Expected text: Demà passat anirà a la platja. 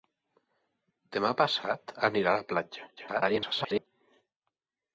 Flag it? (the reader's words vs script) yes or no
yes